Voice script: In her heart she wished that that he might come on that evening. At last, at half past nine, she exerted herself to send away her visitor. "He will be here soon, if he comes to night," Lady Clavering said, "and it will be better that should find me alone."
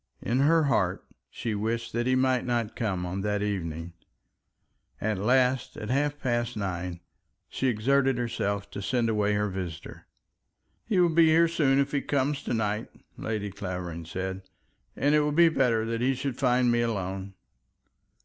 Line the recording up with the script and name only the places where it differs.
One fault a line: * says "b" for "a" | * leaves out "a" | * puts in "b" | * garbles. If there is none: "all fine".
* leaves out "that"
* puts in "not"
* puts in "he"